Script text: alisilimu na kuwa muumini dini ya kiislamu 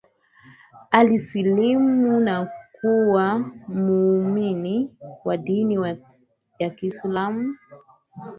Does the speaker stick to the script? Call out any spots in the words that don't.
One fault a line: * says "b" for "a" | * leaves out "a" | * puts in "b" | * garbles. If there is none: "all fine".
* puts in "wa"